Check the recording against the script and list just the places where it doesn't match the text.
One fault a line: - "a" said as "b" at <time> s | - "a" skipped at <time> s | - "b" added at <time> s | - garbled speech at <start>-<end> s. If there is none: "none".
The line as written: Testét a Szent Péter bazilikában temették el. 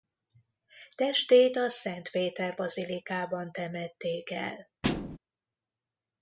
none